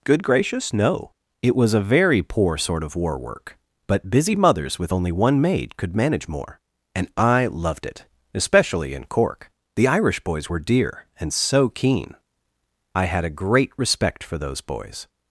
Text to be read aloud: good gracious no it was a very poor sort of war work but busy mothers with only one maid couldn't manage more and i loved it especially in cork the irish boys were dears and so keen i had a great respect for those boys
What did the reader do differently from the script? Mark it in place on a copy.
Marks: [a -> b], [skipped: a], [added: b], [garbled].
good gracious no it was a very poor sort of war work but busy mothers with only one maid [couldn't -> could] manage more and i loved it especially in cork the irish boys were [dears -> dear] and so keen i had a great respect for those boys